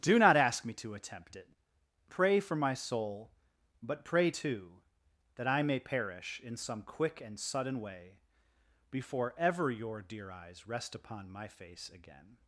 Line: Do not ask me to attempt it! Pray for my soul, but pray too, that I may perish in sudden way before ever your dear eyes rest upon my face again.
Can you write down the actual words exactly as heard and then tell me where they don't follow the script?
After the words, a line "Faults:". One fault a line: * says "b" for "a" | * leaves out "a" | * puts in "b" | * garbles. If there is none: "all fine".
Do not ask me to attempt it! Pray for my soul, but pray too, that I may perish in some quick and sudden way before ever your dear eyes rest upon my face again.
Faults:
* puts in "some quick and"